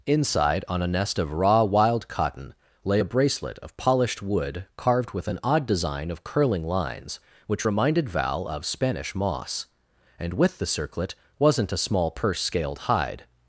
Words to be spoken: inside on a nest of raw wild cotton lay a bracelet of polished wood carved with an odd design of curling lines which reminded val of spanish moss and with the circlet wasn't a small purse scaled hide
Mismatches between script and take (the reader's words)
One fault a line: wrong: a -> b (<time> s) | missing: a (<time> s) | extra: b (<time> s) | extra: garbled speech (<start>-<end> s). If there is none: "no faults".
no faults